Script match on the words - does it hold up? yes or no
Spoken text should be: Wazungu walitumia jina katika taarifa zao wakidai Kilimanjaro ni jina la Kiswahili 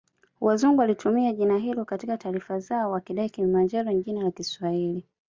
no